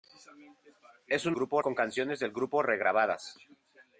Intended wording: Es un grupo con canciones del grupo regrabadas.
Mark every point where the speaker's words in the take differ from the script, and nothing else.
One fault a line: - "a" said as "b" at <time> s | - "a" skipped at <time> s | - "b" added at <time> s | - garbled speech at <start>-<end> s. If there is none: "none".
none